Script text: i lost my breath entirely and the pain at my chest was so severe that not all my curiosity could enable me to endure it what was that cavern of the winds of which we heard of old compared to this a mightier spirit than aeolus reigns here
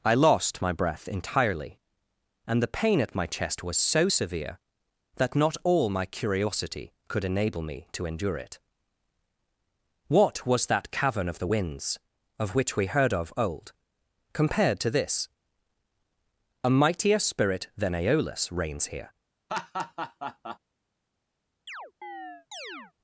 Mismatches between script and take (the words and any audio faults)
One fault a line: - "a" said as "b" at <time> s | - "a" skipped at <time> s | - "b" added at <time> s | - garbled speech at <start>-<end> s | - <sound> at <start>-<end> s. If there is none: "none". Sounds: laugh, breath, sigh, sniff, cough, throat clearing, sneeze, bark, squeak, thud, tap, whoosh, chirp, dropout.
- laugh at 19.5-20.6 s
- chirp at 21.7-22.9 s